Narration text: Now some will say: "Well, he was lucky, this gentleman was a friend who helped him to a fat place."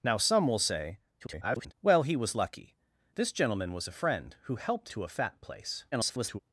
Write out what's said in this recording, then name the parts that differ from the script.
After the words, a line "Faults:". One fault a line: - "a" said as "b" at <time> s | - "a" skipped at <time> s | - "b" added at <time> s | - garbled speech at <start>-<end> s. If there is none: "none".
Now some will say: [garbled] "Well, he was lucky, this gentleman was a friend who helped to a fat place." [garbled]
Faults:
- garbled speech at 1.2-1.7 s
- "him" skipped at 4.9 s
- garbled speech at 5.9-6.4 s